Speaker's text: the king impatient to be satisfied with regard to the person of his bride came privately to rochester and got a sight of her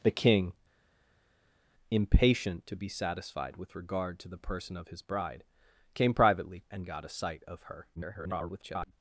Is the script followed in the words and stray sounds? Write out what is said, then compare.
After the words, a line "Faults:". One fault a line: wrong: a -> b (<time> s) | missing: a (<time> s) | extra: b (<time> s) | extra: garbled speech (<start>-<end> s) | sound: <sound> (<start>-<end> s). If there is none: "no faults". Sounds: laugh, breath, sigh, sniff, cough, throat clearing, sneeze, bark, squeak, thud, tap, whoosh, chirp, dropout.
the king impatient to be satisfied with regard to the person of his bride came privately and got a sight of her [garbled]
Faults:
missing: to rochester (6.6 s)
extra: garbled speech (7.9-8.9 s)